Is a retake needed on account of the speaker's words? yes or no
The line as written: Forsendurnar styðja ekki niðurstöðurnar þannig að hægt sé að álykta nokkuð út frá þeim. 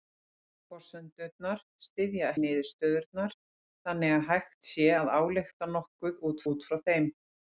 yes